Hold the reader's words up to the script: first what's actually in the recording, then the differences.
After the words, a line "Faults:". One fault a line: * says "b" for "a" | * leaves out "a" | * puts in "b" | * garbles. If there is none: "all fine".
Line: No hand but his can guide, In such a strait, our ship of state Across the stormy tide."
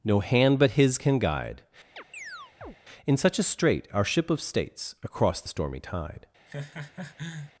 No hand but his can guide, In such a strait, our ship of states Across the stormy tide."
Faults:
* says "states" for "state"